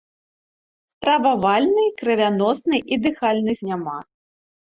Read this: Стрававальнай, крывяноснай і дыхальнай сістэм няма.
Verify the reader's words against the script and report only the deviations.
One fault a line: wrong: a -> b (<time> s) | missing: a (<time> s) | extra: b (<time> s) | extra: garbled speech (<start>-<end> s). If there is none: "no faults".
missing: сістэм (3.6 s)